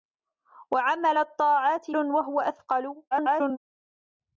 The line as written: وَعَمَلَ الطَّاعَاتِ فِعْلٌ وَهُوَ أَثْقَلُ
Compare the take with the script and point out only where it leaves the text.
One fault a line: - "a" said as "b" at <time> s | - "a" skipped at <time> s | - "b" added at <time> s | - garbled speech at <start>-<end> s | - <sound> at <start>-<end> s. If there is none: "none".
- "فِعْلٌ" skipped at 1.9 s
- garbled speech at 3.1-3.6 s